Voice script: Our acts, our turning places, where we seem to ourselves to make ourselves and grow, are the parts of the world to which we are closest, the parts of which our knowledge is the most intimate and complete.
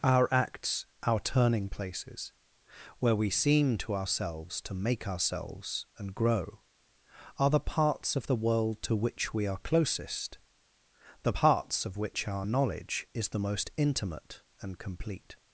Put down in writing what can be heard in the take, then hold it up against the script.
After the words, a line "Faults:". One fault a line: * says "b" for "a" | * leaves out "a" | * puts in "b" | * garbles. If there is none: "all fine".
Our acts, our turning places, where we seem to ourselves to make ourselves and grow, are the parts of the world to which we are closest, the parts of which our knowledge is the most intimate and complete.
Faults:
all fine